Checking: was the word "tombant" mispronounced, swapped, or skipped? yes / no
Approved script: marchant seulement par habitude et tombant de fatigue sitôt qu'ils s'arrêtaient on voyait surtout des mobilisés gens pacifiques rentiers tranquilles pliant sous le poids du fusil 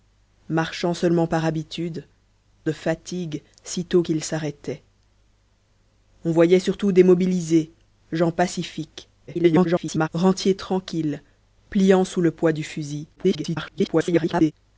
yes